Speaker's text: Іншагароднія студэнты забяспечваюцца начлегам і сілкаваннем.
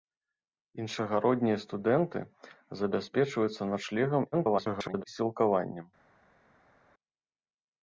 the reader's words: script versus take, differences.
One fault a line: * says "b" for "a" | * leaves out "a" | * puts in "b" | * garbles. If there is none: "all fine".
* garbles